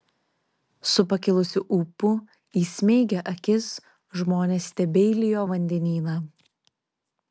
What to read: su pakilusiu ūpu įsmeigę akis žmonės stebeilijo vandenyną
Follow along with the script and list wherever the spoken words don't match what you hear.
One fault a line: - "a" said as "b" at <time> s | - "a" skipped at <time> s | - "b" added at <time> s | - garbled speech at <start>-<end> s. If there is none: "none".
none